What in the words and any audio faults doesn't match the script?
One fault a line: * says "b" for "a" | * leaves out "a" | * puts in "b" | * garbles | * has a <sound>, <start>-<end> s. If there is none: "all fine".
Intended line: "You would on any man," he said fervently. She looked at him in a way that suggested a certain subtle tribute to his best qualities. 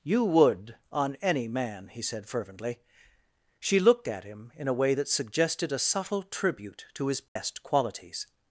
* leaves out "certain"
* has a dropout, 7.3-7.4 s